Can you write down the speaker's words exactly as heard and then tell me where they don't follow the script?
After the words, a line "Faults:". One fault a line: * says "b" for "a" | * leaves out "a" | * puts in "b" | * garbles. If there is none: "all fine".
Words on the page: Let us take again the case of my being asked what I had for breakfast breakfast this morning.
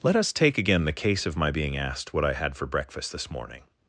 Let us take again the case of my being asked what I had for breakfast this morning.
Faults:
* leaves out "breakfast"